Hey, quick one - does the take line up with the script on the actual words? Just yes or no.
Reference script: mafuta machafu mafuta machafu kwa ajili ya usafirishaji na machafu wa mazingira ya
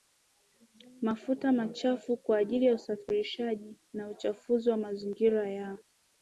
no